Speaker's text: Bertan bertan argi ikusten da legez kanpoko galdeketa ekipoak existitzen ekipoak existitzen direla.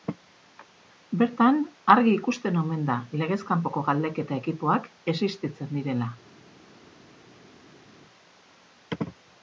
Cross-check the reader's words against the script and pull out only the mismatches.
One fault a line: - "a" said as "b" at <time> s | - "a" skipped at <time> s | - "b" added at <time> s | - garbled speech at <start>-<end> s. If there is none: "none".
- "bertan" skipped at 1.6 s
- "omen" added at 2.6 s
- "ekipoak existitzen" skipped at 5.7 s